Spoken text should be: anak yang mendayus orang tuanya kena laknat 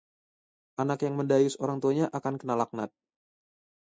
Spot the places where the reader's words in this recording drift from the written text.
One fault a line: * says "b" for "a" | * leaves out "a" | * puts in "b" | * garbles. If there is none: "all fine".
* puts in "akan"